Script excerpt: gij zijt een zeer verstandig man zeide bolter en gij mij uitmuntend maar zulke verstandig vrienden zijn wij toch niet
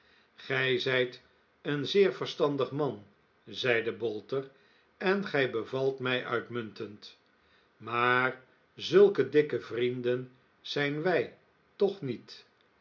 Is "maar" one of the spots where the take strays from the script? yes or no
no